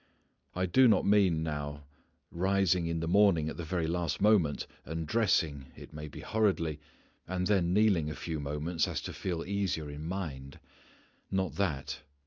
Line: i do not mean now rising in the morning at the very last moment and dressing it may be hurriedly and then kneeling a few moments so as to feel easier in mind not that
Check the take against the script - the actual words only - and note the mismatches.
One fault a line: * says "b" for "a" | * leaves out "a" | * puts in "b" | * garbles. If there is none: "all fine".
all fine